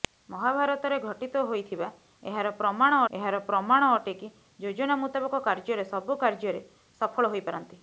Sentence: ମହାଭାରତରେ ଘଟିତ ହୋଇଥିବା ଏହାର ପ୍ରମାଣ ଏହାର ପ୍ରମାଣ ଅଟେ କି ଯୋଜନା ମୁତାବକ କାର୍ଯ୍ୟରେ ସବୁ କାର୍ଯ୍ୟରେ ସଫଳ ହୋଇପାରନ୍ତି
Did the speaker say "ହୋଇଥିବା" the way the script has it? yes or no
yes